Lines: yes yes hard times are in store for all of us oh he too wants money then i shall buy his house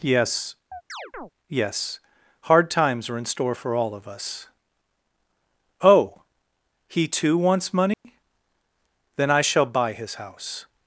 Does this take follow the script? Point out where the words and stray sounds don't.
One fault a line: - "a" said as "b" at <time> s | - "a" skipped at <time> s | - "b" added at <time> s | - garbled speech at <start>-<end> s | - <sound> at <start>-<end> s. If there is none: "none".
- chirp at 0.7-1.3 s
- dropout at 7.9-8.0 s